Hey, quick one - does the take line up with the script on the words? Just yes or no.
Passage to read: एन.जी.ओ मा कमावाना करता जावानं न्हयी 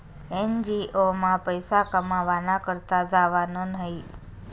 no